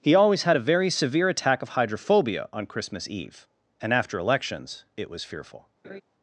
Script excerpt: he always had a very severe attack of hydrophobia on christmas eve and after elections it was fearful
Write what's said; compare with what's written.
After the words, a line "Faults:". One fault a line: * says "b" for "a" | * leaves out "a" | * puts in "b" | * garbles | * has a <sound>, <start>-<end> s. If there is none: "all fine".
he always had a very severe attack of hydrophobia on christmas eve and after elections it was fearful
Faults:
* has a laugh, 5.8-6.0 s